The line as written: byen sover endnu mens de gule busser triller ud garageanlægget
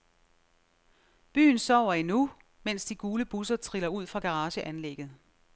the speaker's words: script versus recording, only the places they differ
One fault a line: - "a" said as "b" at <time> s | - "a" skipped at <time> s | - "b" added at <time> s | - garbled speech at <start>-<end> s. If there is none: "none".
- "fra" added at 4.1 s